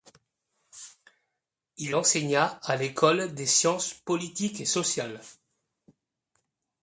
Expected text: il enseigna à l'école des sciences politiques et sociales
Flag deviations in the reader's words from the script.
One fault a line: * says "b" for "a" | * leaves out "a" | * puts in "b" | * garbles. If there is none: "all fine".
all fine